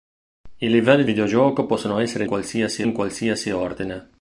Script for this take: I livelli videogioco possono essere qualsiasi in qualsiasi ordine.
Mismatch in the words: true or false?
false